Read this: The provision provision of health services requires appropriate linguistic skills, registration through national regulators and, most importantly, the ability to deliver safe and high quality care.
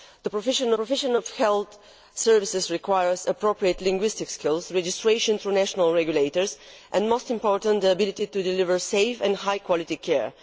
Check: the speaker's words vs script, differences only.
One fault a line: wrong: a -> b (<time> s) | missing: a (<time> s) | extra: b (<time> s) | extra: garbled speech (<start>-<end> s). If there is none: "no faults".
no faults